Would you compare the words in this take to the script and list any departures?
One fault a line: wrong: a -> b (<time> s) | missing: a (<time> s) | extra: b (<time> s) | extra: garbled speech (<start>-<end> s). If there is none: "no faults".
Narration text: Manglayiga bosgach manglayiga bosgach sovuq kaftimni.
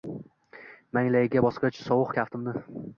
missing: manglayiga bosgach (1.8 s)